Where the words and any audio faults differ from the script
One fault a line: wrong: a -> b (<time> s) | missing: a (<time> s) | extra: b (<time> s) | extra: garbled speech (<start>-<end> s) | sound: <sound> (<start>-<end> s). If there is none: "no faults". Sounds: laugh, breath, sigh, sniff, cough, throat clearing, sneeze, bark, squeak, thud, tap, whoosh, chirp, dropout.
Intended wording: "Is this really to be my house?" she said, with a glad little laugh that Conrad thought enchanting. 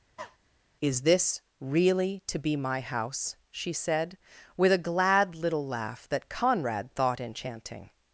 sound: cough (0.2-0.4 s)